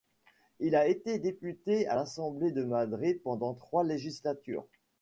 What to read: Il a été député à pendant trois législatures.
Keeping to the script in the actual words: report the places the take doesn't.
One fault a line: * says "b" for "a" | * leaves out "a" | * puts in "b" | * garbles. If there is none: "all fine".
* puts in "l'Assemblée de Madrid"